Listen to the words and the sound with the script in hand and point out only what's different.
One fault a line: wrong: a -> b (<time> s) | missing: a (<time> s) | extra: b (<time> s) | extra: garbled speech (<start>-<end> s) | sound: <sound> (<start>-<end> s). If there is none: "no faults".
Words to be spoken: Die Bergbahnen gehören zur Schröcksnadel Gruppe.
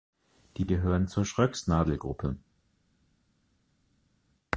missing: Bergbahnen (0.7 s)